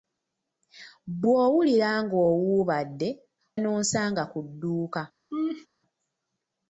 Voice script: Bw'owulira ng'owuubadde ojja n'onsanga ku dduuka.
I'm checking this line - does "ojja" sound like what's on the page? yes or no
no